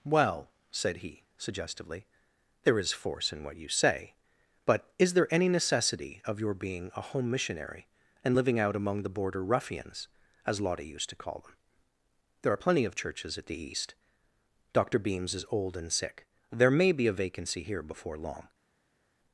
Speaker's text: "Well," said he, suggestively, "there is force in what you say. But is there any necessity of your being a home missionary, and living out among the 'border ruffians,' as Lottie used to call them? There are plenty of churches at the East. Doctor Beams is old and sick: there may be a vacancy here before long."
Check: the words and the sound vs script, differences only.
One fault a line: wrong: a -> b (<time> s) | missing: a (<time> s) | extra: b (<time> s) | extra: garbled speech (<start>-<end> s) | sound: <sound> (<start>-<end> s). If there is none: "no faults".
no faults